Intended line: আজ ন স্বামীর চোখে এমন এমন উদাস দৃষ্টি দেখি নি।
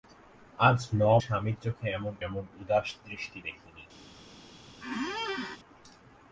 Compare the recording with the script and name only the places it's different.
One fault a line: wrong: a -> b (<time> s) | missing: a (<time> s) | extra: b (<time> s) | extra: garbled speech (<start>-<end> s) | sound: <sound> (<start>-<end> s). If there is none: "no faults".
sound: squeak (4.8-5.6 s)